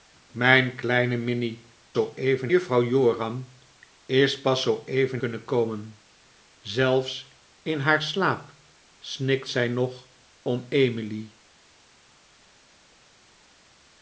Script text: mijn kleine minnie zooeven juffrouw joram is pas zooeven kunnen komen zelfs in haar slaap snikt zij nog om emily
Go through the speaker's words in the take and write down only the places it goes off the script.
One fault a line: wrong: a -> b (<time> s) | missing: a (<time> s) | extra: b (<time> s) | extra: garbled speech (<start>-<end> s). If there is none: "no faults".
no faults